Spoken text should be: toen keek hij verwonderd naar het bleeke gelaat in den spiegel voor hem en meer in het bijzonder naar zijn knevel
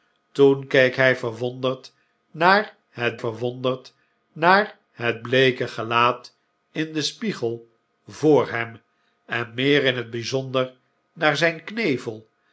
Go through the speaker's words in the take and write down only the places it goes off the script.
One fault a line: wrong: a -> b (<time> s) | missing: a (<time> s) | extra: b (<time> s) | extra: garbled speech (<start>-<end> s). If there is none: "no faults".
extra: verwonderd naar het (3.2 s)